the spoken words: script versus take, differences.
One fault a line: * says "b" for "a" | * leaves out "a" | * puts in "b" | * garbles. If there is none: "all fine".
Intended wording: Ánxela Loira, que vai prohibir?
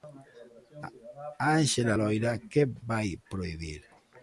all fine